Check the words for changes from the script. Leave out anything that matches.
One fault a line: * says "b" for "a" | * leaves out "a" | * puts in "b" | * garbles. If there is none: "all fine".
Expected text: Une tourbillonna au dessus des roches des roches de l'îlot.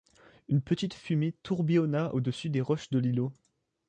* puts in "petite fumée"
* leaves out "des roches"